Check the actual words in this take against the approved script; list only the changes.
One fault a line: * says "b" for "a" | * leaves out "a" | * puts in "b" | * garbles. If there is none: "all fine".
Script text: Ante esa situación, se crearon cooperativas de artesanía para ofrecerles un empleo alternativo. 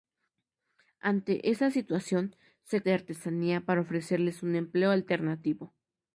* leaves out "crearon cooperativas"